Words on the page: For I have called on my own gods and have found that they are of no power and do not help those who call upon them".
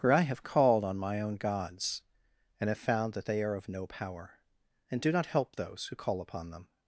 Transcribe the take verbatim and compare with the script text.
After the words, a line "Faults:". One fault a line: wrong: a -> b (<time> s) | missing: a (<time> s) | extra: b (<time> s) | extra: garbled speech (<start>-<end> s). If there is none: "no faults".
For I have called on my own gods and have found that they are of no power and do not help those who call upon them".
Faults:
no faults